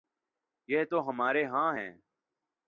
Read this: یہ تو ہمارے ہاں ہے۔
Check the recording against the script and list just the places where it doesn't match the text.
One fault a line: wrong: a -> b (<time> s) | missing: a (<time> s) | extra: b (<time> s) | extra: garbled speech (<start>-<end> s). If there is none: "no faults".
no faults